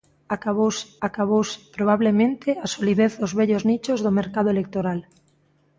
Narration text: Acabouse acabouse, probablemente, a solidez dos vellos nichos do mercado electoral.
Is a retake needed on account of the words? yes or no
no